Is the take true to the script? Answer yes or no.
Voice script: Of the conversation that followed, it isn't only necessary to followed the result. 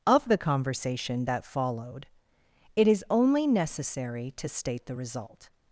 no